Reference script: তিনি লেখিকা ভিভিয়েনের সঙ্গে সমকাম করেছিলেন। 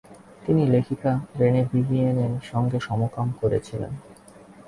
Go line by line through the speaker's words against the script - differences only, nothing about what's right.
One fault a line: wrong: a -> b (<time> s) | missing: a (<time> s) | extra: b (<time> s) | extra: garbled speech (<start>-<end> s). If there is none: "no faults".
extra: রেনে (1.4 s)